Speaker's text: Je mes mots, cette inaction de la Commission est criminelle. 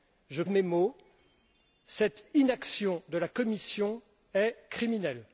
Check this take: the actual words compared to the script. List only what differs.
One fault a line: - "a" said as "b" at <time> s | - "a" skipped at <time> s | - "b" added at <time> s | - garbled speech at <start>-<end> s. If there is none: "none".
none